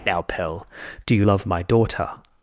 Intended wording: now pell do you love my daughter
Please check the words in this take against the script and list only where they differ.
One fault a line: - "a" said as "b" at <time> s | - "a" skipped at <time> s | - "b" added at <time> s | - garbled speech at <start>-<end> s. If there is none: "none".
none